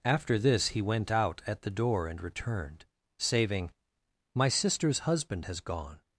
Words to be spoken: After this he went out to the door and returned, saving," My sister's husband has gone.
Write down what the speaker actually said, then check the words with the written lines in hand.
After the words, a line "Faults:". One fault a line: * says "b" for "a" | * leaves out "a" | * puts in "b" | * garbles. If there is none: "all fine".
After this he went out at the door and returned, saving," My sister's husband has gone.
Faults:
* says "at" for "to"